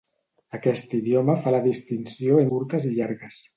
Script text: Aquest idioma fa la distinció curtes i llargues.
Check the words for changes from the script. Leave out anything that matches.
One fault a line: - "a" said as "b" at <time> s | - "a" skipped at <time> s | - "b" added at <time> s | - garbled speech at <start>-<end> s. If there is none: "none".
none